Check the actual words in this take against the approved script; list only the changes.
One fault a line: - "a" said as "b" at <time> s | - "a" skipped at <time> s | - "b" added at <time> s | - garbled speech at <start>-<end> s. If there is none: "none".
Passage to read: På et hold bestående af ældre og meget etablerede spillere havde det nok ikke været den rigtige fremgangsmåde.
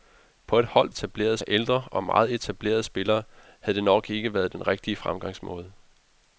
- "bestående" said as "etablerede" at 0.9 s